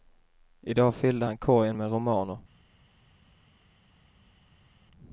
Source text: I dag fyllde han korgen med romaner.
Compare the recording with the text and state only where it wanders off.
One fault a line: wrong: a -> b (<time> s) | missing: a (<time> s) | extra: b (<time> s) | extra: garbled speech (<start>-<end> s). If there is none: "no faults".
no faults